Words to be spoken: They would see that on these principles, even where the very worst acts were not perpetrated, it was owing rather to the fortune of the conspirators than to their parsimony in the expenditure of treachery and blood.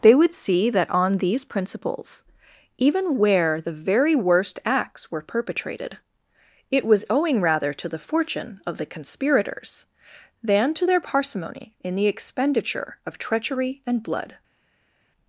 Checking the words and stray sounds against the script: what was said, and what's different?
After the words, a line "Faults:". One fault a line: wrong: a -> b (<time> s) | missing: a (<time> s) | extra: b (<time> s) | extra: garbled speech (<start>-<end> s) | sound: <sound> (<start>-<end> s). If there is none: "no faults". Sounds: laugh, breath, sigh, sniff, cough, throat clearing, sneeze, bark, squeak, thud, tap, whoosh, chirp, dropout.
They would see that on these principles, even where the very worst acts were perpetrated, it was owing rather to the fortune of the conspirators than to their parsimony in the expenditure of treachery and blood.
Faults:
missing: not (5.2 s)